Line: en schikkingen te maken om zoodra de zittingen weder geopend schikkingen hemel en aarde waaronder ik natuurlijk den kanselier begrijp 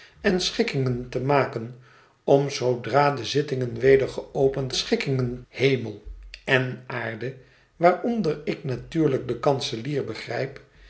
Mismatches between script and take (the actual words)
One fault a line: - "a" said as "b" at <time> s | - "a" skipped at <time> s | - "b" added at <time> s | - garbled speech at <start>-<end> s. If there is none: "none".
none